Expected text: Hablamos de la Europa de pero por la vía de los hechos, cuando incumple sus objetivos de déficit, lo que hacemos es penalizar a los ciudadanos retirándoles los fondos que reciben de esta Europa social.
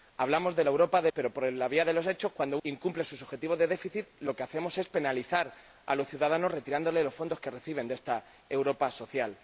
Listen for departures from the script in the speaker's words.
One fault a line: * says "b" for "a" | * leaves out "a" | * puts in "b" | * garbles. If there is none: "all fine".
all fine